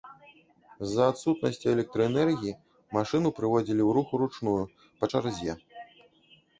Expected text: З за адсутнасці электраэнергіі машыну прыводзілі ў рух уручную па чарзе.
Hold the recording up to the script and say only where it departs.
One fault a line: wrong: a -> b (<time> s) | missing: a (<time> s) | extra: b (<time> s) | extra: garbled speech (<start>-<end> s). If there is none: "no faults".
no faults